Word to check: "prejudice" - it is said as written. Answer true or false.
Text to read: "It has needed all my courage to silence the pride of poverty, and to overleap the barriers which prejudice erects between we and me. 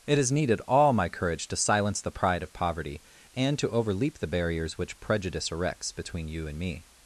true